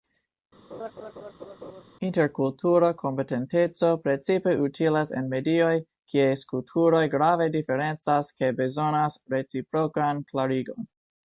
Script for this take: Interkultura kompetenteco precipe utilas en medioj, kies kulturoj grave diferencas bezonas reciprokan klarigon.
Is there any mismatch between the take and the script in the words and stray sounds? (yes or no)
yes